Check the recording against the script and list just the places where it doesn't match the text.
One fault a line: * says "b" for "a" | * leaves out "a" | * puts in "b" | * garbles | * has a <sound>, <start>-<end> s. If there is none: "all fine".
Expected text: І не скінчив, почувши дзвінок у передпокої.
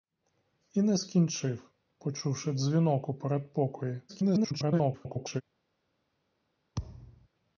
* garbles
* has a thud, 6.8-7.3 s